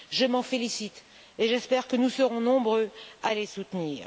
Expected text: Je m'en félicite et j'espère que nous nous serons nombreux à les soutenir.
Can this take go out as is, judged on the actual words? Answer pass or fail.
fail